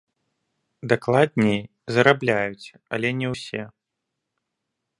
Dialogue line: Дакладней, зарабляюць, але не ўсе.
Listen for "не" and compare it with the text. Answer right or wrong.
right